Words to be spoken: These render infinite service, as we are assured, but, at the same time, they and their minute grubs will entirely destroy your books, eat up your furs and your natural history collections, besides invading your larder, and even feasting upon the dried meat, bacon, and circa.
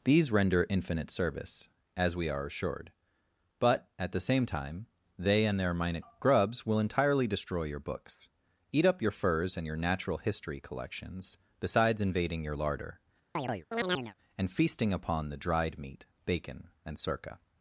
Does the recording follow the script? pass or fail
fail